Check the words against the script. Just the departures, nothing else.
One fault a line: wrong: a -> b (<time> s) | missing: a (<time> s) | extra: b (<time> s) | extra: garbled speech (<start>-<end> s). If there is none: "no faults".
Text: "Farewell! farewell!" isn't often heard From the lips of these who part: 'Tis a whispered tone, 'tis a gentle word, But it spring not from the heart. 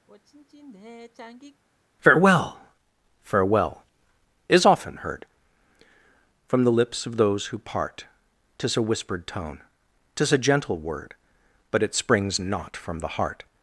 wrong: isn't -> is (4.5 s)
wrong: these -> those (7.2 s)
wrong: spring -> springs (11.9 s)